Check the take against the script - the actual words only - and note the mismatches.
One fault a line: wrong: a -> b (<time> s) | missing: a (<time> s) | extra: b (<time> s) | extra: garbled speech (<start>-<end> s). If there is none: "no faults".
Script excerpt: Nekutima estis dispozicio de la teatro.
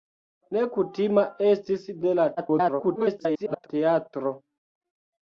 missing: dispozicio (1.9 s)
extra: garbled speech (2.4-3.7 s)